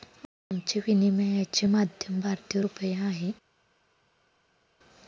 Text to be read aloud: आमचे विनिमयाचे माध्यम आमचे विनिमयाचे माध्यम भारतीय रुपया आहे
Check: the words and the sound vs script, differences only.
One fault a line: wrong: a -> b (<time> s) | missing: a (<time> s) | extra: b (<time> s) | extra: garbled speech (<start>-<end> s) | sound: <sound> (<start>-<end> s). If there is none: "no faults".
missing: आमचे विनिमयाचे माध्यम (2.2 s)